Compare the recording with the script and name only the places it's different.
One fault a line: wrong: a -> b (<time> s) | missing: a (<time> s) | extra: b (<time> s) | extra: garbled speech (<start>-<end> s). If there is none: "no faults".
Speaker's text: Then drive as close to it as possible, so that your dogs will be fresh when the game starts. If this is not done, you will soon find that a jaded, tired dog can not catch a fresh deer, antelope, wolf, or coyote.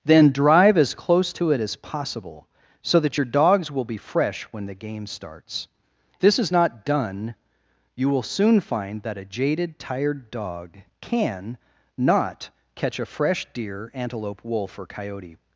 missing: If (5.7 s)